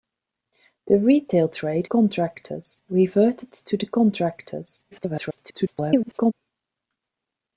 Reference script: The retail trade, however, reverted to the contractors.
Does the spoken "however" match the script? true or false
false